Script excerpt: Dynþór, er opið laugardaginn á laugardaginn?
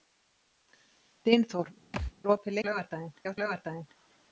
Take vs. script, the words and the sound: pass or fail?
fail